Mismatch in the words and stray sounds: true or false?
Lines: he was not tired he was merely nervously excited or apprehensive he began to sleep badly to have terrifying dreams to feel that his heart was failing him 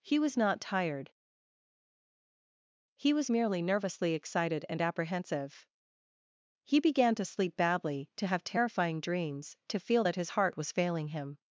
true